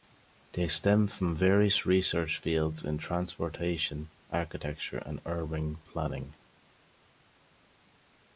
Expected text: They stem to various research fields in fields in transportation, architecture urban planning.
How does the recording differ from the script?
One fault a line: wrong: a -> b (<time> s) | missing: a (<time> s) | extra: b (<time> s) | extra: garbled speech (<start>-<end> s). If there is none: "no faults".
wrong: to -> from (1.1 s)
missing: fields in (3.0 s)
extra: and (5.0 s)